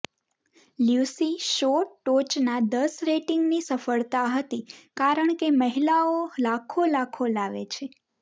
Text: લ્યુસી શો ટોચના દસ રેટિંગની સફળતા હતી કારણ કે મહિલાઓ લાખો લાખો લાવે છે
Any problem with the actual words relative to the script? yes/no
no